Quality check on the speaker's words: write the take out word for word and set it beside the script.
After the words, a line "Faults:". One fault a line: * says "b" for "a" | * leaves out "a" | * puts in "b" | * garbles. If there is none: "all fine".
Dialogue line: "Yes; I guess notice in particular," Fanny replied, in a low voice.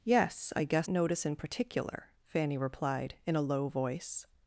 "Yes; I guess notice in particular," Fanny replied, in a low voice.
Faults:
all fine